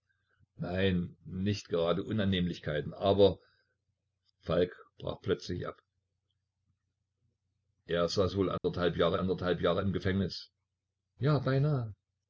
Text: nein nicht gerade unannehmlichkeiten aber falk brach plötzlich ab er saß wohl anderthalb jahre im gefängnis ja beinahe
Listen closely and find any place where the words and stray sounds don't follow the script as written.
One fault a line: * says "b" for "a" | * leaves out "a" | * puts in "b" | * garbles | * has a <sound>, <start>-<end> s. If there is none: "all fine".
* has a dropout, 8.6-8.6 s
* puts in "anderthalb jahre"